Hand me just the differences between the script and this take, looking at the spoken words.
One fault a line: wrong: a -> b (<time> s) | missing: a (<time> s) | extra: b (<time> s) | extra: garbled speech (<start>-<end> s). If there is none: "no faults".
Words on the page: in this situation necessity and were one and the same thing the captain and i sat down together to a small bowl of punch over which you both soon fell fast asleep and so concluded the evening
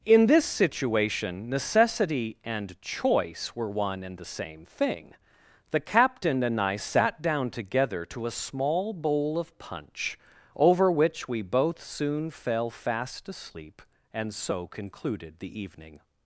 extra: choice (2.8 s)
wrong: you -> we (11.3 s)